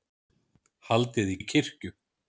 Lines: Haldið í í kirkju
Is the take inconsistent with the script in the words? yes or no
no